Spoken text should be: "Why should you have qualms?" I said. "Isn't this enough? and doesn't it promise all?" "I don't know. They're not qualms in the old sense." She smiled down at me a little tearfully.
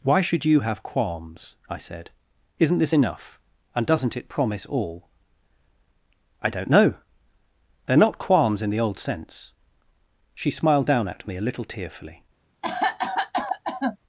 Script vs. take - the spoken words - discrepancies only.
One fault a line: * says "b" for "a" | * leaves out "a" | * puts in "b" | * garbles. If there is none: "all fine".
all fine